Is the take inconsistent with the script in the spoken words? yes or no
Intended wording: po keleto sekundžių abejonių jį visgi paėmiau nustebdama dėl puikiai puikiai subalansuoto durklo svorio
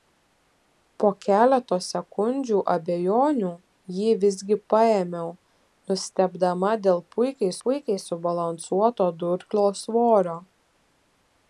no